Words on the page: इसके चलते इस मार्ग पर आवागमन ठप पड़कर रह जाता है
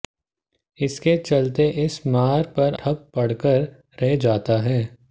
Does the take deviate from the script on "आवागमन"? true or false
true